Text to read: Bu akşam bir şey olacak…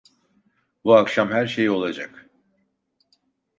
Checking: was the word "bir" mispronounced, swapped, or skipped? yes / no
yes